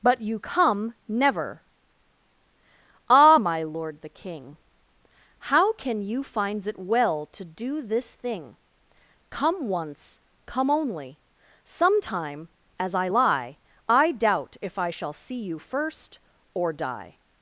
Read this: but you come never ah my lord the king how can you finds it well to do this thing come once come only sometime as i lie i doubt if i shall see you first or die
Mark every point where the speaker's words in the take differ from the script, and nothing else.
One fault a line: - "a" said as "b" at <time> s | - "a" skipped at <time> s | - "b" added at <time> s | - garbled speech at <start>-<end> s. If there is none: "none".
none